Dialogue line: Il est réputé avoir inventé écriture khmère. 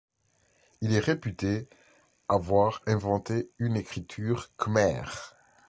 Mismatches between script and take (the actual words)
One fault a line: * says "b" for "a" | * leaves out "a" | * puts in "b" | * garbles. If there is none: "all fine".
* puts in "une"